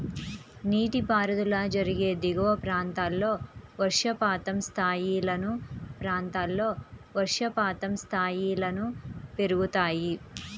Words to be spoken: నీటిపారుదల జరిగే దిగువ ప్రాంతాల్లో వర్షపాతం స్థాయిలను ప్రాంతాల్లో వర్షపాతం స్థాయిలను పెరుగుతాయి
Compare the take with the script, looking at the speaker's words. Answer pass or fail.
pass